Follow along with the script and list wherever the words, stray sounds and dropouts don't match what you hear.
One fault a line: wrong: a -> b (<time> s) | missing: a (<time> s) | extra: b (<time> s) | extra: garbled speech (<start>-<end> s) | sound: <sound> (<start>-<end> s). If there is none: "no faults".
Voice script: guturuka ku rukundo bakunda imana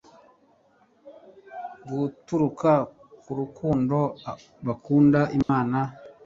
sound: dropout (5.4-5.5 s)